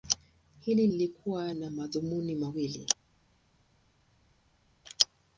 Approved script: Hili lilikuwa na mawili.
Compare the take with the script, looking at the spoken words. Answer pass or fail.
fail